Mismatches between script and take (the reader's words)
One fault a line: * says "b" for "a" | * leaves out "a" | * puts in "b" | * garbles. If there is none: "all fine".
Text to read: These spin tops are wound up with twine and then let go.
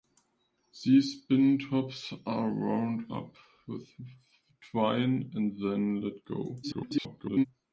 * garbles